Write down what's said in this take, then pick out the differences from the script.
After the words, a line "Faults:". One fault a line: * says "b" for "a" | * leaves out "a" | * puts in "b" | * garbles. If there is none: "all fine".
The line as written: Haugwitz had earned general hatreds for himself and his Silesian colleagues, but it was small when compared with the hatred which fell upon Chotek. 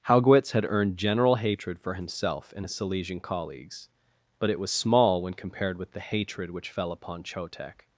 Haugwitz had earned general hatred for himself and his Silesian colleagues, but it was small when compared with the hatred which fell upon Chotek.
Faults:
* says "hatred" for "hatreds"